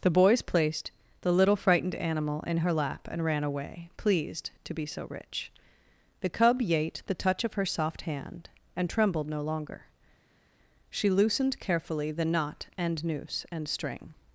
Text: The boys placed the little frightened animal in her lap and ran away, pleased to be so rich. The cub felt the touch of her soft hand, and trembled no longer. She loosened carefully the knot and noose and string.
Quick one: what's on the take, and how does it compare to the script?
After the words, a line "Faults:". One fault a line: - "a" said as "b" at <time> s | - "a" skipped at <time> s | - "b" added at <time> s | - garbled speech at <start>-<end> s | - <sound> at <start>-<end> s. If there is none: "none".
The boys placed the little frightened animal in her lap and ran away, pleased to be so rich. The cub yate the touch of her soft hand, and trembled no longer. She loosened carefully the knot and noose and string.
Faults:
- "felt" said as "yate" at 6.6 s